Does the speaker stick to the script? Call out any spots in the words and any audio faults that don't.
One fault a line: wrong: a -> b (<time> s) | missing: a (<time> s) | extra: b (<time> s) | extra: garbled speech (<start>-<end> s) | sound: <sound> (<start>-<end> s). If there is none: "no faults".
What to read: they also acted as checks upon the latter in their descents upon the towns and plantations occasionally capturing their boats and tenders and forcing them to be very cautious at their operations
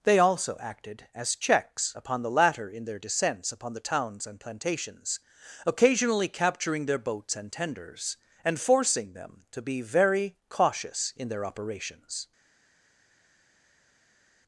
wrong: at -> in (11.2 s)